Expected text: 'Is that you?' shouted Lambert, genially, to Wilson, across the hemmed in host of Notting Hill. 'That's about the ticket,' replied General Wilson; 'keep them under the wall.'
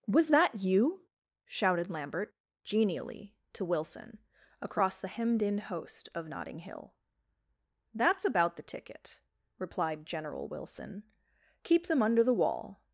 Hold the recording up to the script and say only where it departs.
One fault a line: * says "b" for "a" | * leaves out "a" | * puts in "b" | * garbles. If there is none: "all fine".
* says "Was" for "Is"